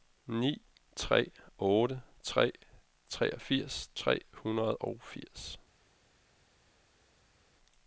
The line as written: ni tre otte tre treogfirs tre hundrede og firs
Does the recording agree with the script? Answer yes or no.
yes